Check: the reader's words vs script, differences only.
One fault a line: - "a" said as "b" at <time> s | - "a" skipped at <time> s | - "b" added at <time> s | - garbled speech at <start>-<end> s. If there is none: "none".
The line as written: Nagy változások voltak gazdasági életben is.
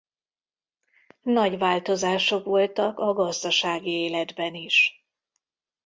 - "a" added at 3.0 s